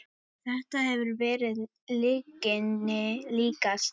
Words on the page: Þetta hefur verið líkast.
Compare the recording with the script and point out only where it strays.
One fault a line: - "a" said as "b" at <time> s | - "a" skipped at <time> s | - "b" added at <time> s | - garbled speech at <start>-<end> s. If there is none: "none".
- "lyginni" added at 2.0 s